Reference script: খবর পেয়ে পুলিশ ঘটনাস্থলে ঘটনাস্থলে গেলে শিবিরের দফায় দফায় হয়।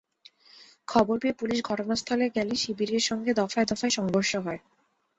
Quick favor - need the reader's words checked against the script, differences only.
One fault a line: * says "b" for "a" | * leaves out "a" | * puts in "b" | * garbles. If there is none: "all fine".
* leaves out "ঘটনাস্থলে"
* puts in "সঙ্গে"
* puts in "সংঘর্ষ"